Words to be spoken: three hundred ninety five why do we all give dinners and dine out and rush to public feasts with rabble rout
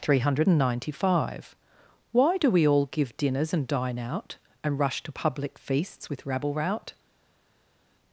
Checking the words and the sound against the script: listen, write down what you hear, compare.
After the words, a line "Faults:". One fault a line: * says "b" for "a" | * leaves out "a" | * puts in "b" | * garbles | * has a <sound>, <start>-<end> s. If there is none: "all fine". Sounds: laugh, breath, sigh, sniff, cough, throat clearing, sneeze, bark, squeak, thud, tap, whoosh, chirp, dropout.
three hundred ninety five why do we all give dinners and dine out and rush to public feasts with rabble rout
Faults:
all fine